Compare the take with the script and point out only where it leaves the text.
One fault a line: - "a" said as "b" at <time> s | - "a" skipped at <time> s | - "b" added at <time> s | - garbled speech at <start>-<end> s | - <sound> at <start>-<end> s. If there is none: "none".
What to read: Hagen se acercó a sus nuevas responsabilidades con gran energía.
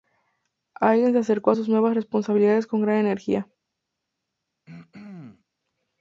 - throat clearing at 4.7-5.4 s